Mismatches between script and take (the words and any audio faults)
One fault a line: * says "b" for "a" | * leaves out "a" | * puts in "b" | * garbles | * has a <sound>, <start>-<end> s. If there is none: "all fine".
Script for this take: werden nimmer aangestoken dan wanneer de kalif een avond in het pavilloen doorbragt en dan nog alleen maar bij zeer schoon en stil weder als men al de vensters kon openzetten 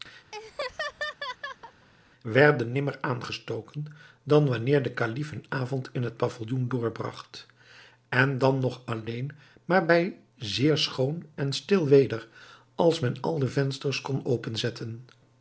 * has a laugh, 0.3-1.9 s